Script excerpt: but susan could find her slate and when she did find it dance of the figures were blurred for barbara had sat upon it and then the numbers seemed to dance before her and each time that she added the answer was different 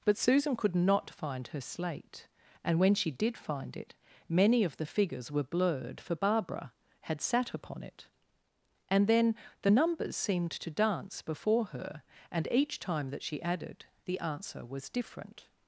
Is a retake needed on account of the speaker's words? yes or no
yes